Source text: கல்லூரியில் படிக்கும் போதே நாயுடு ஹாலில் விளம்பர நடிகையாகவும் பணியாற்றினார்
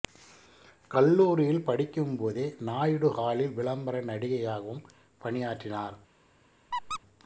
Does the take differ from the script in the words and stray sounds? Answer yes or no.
yes